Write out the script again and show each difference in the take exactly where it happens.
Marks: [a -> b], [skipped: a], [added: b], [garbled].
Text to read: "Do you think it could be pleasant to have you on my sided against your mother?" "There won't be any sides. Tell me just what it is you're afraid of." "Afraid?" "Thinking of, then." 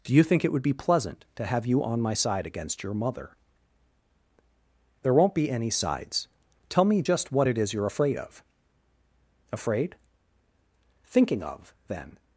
"Do you think it [could -> would] be pleasant to have you on my [sided -> side] against your mother?" "There won't be any sides. Tell me just what it is you're afraid of." "Afraid?" "Thinking of, then."